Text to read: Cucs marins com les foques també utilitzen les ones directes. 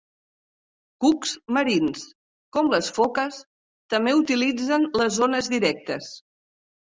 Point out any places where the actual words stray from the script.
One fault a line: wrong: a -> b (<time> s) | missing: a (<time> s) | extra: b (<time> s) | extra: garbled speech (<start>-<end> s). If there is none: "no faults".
no faults